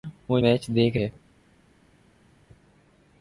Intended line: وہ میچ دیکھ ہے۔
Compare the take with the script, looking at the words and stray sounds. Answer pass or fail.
pass